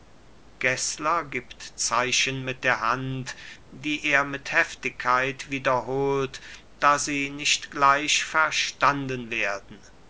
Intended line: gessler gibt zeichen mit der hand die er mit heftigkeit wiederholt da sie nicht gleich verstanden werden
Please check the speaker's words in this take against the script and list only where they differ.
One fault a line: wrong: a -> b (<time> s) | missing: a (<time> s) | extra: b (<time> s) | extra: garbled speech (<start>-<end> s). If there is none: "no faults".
no faults